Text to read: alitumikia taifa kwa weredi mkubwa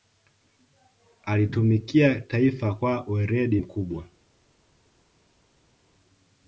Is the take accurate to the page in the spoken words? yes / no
yes